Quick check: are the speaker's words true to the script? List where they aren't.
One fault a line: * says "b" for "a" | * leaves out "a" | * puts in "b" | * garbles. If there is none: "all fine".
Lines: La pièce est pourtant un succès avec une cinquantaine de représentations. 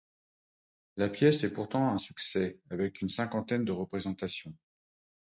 all fine